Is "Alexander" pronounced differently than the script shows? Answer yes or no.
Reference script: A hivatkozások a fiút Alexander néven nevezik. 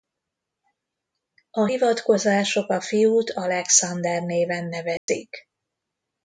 no